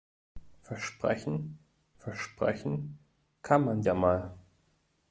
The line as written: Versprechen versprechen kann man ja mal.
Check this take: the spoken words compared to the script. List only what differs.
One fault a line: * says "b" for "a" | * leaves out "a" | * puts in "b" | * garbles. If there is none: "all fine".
all fine